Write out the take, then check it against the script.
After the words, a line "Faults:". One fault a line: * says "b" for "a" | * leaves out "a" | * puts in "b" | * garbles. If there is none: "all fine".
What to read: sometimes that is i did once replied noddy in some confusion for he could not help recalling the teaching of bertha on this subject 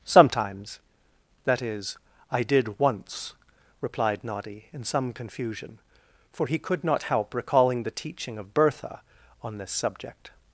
sometimes that is i did once replied noddy in some confusion for he could not help recalling the teaching of bertha on this subject
Faults:
all fine